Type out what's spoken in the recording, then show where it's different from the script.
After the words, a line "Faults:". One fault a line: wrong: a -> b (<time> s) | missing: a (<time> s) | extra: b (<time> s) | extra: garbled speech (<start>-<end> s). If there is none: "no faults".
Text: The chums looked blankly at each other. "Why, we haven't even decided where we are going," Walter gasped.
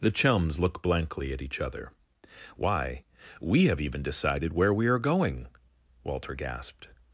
The chums look blankly at each other. "Why, we have even decided where we are going," Walter gasped.
Faults:
wrong: looked -> look (0.6 s)
wrong: haven't -> have (3.6 s)